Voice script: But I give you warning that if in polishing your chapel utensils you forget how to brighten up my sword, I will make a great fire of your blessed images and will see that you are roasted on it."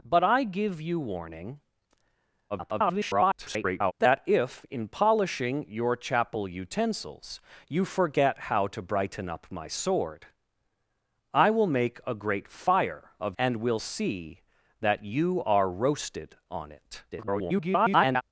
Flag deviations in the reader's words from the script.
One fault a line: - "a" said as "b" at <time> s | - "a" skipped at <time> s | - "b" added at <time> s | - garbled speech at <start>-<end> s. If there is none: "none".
- garbled speech at 2.5-3.9 s
- "your blessed images" skipped at 13.4 s
- garbled speech at 17.1-18.2 s